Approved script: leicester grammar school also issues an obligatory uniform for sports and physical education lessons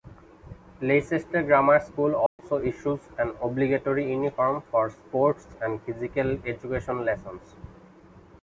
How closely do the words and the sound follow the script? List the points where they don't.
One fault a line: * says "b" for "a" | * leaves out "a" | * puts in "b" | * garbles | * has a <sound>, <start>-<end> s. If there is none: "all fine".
* has a dropout, 2.3-2.4 s